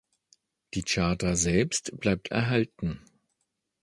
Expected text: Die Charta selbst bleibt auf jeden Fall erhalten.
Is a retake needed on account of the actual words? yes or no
yes